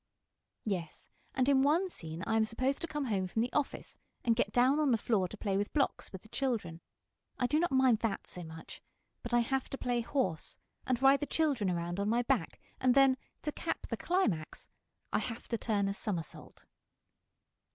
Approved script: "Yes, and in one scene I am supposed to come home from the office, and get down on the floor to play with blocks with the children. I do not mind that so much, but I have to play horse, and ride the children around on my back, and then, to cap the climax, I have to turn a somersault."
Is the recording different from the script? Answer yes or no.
no